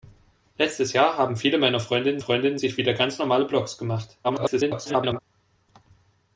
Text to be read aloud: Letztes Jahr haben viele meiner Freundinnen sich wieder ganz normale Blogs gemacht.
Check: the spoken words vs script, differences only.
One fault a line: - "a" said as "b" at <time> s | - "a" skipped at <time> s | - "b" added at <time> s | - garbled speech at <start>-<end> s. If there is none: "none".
- "Freundinnen" added at 2.2 s
- garbled speech at 4.2-5.2 s